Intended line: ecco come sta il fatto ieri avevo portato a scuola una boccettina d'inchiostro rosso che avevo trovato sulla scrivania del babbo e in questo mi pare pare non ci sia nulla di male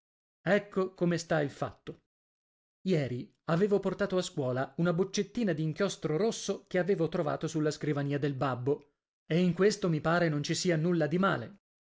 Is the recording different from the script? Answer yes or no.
yes